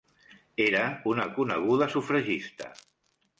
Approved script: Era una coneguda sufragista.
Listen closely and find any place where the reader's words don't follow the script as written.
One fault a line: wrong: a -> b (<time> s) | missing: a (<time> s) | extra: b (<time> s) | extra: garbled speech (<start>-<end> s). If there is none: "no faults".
no faults